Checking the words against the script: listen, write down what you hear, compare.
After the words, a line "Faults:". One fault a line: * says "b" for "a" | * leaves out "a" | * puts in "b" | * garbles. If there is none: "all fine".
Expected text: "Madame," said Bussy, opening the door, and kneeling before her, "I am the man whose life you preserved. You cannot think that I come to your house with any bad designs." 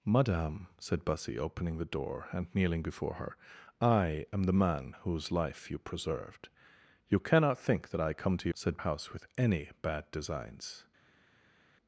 "Madame," said Bussy, opening the door, and kneeling before her, "I am the man whose life you preserved. You cannot think that I come to said house with any bad designs."
Faults:
* says "said" for "your"